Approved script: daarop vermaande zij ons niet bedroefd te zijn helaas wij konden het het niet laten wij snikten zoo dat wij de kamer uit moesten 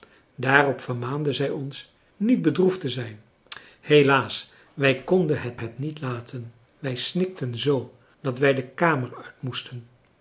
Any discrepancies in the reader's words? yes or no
no